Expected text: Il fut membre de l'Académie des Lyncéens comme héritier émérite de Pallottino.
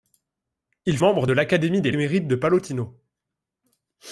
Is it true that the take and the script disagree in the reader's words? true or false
true